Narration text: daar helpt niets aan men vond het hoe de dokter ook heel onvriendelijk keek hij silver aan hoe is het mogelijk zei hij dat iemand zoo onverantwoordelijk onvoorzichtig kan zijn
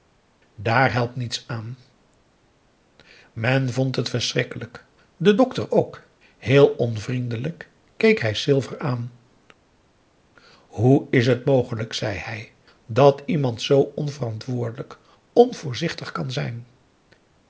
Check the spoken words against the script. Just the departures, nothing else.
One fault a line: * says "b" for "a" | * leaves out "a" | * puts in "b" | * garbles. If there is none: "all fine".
* says "verschrikkelijk" for "hoe"